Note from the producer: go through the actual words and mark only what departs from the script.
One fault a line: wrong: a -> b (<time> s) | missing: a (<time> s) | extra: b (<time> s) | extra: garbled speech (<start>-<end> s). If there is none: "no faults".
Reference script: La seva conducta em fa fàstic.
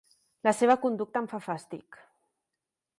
no faults